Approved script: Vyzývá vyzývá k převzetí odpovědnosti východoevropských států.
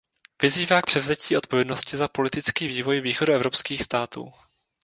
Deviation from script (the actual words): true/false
true